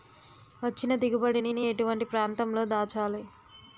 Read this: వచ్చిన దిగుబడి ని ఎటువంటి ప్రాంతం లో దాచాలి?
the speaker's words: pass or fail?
fail